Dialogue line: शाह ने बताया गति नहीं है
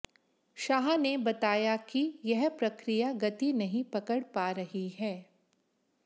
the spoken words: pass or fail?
fail